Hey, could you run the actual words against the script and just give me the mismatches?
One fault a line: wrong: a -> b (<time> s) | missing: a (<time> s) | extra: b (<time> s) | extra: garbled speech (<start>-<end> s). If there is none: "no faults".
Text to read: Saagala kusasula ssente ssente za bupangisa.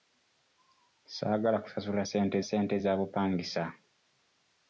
no faults